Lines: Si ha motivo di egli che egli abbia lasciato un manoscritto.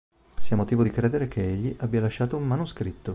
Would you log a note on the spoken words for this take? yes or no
yes